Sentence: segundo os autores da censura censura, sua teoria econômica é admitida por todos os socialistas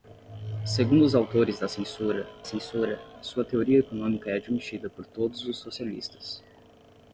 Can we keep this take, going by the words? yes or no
yes